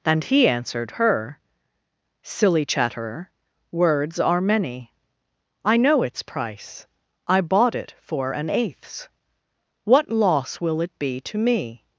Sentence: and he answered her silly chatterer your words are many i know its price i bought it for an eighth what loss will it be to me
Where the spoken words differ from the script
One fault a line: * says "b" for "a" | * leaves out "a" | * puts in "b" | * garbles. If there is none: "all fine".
* leaves out "your"
* says "eighths" for "eighth"